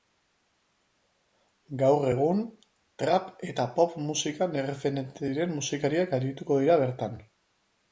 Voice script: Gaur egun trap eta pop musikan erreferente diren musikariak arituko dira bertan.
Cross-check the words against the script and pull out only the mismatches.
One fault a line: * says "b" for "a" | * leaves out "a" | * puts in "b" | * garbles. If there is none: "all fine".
all fine